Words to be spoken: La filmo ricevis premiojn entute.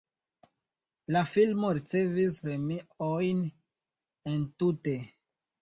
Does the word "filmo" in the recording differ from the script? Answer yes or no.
no